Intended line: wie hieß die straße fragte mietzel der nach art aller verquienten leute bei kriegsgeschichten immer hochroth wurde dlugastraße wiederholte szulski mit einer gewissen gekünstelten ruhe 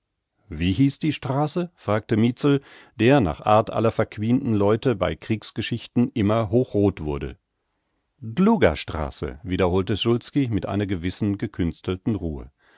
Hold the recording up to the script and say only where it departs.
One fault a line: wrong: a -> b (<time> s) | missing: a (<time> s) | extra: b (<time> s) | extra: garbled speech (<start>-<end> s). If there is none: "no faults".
no faults